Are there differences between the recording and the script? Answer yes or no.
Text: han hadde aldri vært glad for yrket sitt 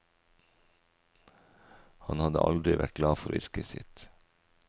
no